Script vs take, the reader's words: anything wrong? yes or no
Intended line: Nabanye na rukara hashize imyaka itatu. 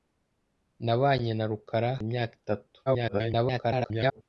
yes